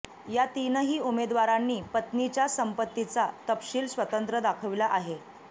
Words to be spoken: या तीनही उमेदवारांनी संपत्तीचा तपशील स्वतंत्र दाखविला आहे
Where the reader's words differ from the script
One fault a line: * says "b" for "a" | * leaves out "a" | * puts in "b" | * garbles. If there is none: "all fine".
* puts in "पत्नीच्या"